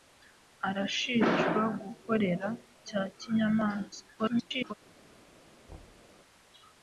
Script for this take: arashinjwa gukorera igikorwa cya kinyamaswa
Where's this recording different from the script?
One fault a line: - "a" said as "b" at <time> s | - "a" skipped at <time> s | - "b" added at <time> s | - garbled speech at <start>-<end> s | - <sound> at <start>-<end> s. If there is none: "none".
- "igikorwa" skipped at 2.5 s
- garbled speech at 4.2-4.7 s
- thud at 5.7-6.1 s